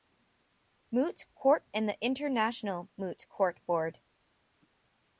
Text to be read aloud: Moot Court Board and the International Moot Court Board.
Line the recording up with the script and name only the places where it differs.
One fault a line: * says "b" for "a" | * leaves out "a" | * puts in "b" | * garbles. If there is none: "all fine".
* leaves out "Board"